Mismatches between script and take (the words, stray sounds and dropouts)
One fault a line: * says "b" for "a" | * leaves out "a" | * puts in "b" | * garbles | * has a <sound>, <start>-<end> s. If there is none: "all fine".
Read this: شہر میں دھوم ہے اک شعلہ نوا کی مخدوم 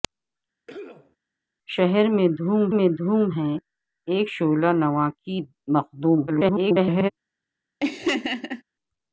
* has a cough, 0.7-1.2 s
* puts in "میں دھوم"
* garbles
* has a laugh, 7.8-8.6 s